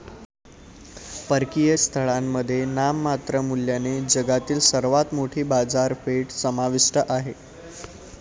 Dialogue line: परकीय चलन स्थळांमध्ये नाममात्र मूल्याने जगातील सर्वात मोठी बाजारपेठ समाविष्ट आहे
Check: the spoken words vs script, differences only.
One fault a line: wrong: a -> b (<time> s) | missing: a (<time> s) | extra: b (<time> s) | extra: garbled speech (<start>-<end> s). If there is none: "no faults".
missing: चलन (1.8 s)